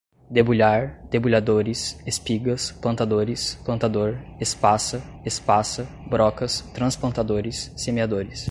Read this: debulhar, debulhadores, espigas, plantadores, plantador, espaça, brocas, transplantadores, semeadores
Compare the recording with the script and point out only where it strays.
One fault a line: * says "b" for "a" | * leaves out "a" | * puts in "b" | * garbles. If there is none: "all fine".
* puts in "espaça"